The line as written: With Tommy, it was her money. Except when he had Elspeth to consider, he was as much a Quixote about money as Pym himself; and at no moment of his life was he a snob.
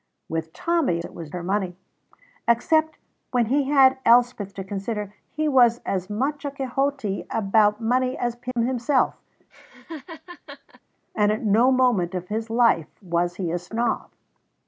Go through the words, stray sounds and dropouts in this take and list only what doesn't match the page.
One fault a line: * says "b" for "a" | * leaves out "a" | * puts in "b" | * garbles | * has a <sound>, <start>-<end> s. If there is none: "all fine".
* has a dropout, 8.5-8.6 s
* has a laugh, 9.5-10.8 s